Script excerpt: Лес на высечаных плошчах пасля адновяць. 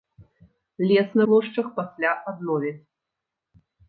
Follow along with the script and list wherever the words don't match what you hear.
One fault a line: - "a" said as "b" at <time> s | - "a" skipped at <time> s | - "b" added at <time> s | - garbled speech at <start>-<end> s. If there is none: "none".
- "высечаных" skipped at 1.3 s